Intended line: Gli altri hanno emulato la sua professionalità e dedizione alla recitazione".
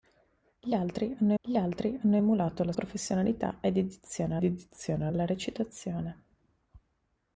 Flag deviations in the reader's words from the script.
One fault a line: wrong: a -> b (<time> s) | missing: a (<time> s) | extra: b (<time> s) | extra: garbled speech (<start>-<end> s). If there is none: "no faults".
extra: gli altri hanno (1.4 s)
missing: sua (2.7 s)
extra: dedizione (4.4 s)